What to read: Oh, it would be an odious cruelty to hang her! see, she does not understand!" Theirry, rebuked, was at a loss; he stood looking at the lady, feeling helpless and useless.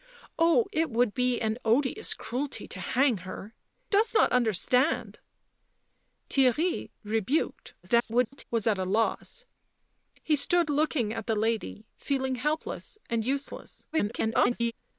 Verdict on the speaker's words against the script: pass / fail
fail